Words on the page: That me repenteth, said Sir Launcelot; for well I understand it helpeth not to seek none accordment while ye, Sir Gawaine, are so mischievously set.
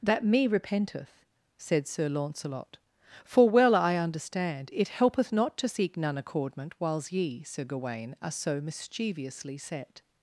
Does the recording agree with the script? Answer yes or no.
no